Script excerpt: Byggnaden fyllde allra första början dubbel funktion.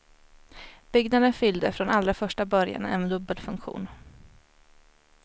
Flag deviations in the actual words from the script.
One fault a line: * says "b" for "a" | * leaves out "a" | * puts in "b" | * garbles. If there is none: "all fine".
* puts in "från"
* puts in "en"